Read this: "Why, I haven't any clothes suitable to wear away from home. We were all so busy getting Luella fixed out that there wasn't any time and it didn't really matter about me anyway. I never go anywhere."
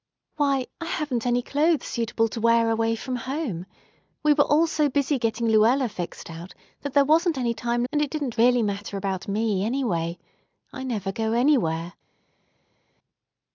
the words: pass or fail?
pass